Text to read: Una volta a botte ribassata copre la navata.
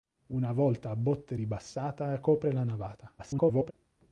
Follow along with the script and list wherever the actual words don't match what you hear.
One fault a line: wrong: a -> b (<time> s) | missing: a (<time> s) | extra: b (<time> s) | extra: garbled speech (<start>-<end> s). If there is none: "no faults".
extra: garbled speech (3.2-3.7 s)